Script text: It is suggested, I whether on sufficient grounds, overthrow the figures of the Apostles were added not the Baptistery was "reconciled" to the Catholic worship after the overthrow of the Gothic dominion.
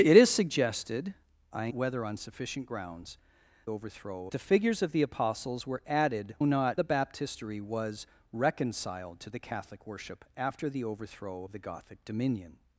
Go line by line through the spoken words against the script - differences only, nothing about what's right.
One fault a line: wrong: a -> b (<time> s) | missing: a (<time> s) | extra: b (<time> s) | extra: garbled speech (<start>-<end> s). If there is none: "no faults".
no faults